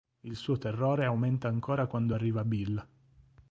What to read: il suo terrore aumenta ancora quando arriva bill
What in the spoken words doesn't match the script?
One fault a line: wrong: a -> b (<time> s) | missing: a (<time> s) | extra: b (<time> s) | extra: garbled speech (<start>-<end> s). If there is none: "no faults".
no faults